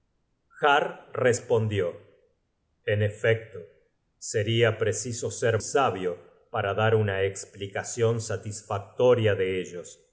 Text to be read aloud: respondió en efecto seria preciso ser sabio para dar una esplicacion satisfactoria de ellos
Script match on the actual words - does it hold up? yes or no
yes